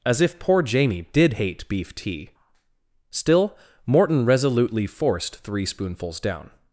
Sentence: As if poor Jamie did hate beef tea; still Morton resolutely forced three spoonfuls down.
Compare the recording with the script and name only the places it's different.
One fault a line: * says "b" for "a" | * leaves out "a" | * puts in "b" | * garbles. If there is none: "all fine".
all fine